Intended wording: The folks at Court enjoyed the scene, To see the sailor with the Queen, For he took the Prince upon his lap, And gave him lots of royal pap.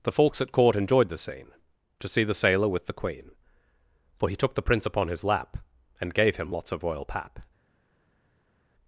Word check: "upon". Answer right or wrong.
right